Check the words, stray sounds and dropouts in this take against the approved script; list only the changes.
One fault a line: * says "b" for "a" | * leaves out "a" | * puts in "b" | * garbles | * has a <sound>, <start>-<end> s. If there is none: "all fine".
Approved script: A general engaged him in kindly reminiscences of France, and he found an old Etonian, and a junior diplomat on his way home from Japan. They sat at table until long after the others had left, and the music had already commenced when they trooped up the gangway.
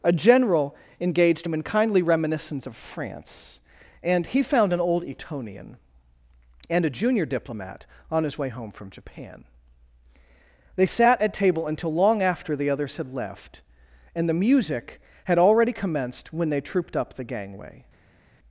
* says "reminiscence" for "reminiscences"